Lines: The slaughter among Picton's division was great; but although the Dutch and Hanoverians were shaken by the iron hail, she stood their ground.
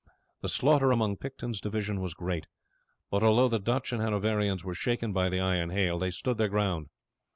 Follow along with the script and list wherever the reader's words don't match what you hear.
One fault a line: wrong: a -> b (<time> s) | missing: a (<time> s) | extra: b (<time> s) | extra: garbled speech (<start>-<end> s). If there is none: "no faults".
wrong: she -> they (6.0 s)